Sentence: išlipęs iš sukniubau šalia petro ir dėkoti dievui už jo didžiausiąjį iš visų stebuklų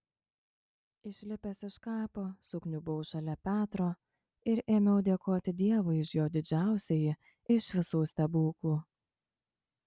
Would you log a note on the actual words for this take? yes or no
yes